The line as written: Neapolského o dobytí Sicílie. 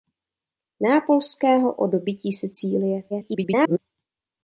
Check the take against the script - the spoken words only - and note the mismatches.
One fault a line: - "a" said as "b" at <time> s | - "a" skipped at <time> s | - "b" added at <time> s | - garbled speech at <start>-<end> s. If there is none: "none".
- garbled speech at 3.1-3.8 s